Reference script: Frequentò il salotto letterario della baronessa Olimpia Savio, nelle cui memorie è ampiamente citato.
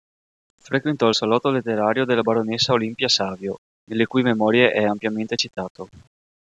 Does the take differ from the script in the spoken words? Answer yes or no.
no